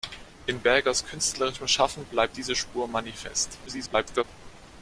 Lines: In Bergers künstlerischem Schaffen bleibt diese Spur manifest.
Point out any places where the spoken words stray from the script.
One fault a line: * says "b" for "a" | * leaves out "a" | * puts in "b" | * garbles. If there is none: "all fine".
* garbles